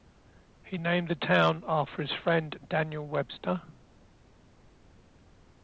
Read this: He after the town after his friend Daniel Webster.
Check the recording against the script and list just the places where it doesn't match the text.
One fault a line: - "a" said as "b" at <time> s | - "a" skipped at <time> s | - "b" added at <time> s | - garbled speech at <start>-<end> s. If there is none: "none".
- "after" said as "named" at 0.8 s